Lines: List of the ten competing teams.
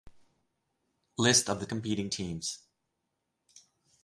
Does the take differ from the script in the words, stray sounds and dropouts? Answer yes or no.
yes